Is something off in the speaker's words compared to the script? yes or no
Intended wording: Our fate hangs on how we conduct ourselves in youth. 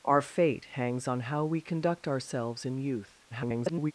yes